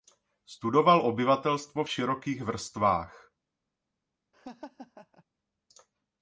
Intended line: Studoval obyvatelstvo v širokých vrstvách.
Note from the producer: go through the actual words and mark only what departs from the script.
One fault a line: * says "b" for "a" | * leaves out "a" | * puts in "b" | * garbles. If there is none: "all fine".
all fine